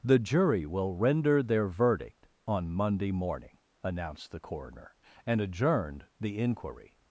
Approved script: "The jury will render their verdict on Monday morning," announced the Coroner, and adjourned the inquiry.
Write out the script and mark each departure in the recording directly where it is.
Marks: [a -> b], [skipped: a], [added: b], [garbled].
"The jury will render their verdict on Monday morning," announced the Coroner, and adjourned the inquiry.